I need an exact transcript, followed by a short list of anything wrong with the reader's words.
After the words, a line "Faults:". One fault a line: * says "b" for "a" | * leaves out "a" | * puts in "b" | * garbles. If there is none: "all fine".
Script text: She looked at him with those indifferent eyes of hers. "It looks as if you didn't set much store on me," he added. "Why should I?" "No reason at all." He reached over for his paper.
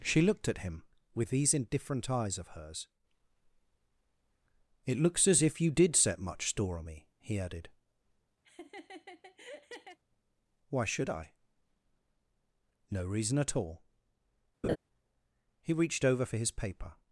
She looked at him with these indifferent eyes of hers. "It looks as if you did set much store on me," he added. "Why should I?" "No reason at all." He reached over for his paper.
Faults:
* says "these" for "those"
* says "did" for "didn't"